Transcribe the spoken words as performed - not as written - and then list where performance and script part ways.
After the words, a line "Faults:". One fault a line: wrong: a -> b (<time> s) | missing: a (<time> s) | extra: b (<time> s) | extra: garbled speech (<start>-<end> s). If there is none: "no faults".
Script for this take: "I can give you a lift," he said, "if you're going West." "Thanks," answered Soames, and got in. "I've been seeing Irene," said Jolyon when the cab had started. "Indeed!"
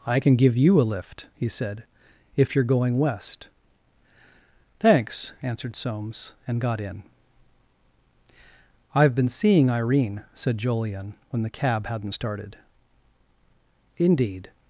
"I can give you a lift," he said, "if you're going West." "Thanks," answered Soames, and got in. "I've been seeing Irene," said Jolyon when the cab hadn't started. "Indeed!"
Faults:
wrong: had -> hadn't (11.9 s)